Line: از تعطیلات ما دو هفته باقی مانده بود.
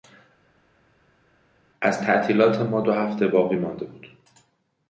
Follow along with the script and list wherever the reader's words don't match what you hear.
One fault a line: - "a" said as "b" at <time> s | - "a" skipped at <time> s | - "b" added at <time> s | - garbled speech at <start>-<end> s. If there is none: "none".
none